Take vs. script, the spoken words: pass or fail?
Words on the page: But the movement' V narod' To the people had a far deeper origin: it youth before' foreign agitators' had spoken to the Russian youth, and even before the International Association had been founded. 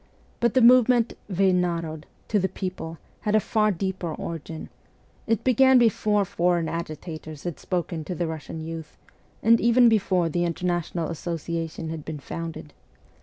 fail